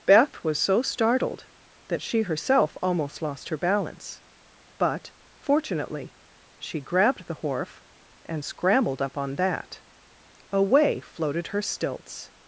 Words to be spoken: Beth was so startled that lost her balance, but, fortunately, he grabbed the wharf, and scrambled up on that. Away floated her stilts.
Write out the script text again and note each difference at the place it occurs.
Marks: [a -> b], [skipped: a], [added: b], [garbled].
Beth was so startled that [added: she herself almost] lost her balance, but, fortunately, [he -> she] grabbed the wharf, and scrambled up on that. Away floated her stilts.